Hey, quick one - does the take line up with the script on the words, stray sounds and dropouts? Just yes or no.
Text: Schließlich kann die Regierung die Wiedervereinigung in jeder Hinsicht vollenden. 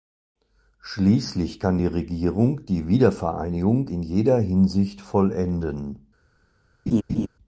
no